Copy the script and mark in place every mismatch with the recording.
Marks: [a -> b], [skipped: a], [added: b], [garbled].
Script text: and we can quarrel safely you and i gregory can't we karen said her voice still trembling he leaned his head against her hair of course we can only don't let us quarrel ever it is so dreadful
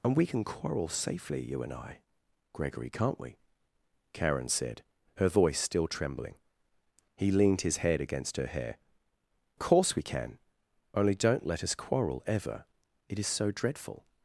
and we can quarrel safely you and i gregory can't we karen said her voice still trembling he leaned his head against her hair [skipped: of] course we can only don't let us quarrel ever it is so dreadful